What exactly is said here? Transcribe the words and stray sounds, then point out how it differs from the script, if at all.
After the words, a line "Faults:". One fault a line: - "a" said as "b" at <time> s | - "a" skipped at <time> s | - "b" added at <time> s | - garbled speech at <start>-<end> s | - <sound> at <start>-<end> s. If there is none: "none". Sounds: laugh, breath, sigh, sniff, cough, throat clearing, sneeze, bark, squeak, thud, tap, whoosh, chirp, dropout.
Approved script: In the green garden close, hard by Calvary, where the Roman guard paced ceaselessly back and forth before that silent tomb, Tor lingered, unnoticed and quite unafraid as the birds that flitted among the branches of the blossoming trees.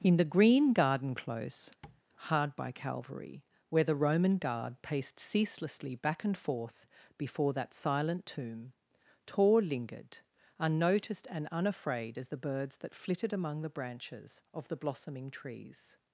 In the green garden close, hard by Calvary, where the Roman guard paced ceaselessly back and forth before that silent tomb, Tor lingered, unnoticed and unafraid as the birds that flitted among the branches of the blossoming trees.
Faults:
- tap at 1.8-2.0 s
- "quite" skipped at 11.5 s